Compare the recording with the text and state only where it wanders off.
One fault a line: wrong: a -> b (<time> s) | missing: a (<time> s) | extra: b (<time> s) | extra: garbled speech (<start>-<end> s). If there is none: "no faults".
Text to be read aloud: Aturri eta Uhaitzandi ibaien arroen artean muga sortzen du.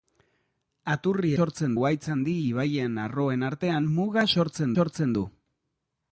wrong: eta -> sortzen (1.4 s)
extra: sortzen (4.8 s)